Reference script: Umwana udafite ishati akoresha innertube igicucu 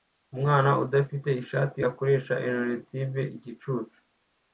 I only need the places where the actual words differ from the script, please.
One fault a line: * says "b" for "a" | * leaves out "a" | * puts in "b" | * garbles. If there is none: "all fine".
all fine